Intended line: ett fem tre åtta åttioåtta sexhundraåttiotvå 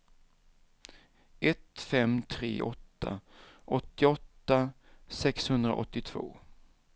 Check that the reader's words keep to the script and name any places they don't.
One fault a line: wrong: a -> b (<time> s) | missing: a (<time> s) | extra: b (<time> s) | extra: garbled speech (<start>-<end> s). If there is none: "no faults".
no faults